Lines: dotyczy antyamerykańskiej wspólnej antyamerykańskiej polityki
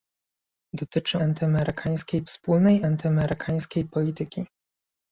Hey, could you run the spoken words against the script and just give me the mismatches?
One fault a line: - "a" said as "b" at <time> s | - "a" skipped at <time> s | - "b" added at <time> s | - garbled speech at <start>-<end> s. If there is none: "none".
none